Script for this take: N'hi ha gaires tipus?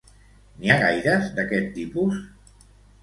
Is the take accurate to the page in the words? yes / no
no